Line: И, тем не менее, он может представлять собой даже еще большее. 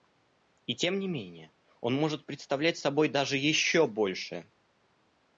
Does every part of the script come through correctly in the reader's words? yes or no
yes